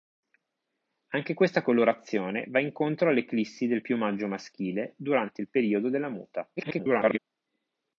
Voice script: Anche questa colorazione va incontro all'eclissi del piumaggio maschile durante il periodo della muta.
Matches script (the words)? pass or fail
fail